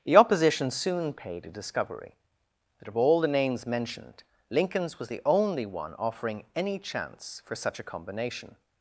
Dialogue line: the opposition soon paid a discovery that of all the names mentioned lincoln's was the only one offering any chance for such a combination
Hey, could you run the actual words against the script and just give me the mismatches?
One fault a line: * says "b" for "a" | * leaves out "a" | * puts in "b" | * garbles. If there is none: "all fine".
all fine